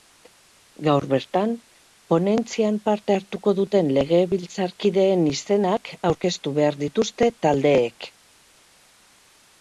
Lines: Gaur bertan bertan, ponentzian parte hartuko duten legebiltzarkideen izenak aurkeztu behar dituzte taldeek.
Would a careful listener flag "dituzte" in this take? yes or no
no